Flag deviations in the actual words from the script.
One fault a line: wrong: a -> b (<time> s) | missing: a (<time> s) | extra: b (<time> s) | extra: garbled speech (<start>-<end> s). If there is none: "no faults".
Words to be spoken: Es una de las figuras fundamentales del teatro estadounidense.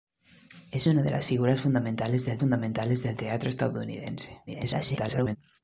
extra: fundamentales del (2.4 s)
extra: garbled speech (4.5-5.4 s)